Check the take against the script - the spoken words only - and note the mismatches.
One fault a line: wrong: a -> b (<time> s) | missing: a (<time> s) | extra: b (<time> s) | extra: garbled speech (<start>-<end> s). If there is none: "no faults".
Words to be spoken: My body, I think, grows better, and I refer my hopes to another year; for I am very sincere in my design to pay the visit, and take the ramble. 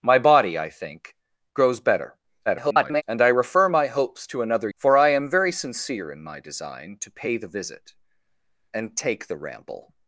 extra: garbled speech (2.5-3.0 s)
missing: year (4.7 s)